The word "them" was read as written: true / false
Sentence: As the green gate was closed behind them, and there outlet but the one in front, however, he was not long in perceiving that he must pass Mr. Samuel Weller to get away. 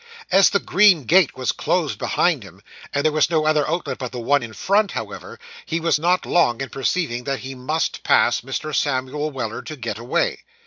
false